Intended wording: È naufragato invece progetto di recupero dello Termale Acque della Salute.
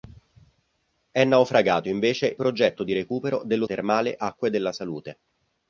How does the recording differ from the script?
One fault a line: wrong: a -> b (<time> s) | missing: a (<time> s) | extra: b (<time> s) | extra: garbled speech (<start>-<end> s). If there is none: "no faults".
no faults